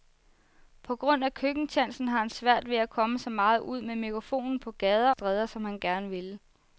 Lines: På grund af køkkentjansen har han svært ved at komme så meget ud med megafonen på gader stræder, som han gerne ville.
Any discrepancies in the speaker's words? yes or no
no